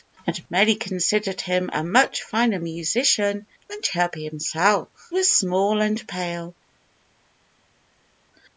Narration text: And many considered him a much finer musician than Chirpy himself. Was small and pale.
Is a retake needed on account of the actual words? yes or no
no